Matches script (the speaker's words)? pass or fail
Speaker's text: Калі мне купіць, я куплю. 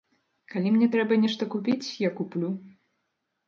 fail